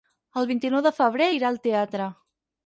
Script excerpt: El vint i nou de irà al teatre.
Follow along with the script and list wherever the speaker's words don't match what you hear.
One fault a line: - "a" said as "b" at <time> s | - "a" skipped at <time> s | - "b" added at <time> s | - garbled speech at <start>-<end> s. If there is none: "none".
- "febrer" added at 1.0 s